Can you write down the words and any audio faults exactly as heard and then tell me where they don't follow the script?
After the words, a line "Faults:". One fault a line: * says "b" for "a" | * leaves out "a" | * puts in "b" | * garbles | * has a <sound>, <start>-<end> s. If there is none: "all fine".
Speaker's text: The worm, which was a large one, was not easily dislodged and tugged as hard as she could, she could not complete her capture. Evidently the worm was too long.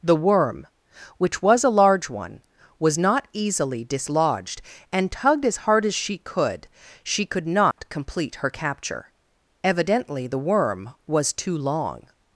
The worm, which was a large one, was not easily dislodged and tugged as hard as she could, she could not complete her capture. Evidently the worm was too long.
Faults:
* has a dropout, 7.7-7.8 s